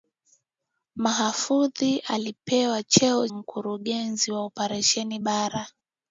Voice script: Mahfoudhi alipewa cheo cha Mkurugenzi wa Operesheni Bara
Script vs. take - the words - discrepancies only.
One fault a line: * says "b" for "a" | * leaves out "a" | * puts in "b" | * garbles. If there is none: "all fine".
* leaves out "cha"